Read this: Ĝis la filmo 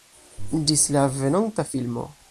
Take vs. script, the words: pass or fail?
fail